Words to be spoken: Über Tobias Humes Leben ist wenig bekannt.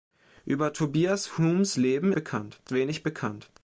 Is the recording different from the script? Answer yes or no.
yes